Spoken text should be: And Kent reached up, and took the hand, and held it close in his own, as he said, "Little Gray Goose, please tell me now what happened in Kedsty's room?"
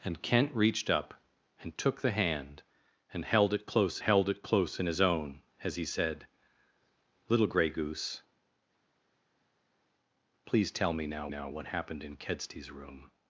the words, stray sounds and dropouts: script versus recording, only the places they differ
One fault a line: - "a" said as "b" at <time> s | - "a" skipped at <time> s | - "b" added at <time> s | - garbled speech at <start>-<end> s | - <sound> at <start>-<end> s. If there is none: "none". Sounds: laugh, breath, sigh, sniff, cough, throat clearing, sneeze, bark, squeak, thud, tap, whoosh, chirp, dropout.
- "held it close" added at 4.0 s
- "now" added at 11.3 s